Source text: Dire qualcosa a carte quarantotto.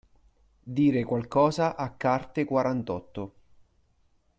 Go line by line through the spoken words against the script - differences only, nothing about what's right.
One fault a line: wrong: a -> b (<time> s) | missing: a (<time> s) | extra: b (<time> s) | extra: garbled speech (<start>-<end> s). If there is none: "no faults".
no faults